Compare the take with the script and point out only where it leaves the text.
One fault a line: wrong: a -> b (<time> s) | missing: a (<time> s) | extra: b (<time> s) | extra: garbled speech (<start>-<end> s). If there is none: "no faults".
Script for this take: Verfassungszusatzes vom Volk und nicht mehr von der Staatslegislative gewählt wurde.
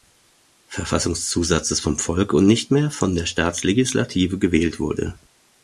no faults